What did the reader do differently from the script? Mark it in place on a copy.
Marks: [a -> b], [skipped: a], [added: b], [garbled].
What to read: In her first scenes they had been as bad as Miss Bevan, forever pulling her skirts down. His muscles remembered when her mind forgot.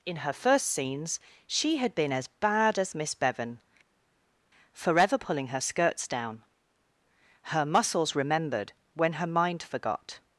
In her first scenes [they -> she] had been as bad as Miss Bevan, forever pulling her skirts down. [His -> Her] muscles remembered when her mind forgot.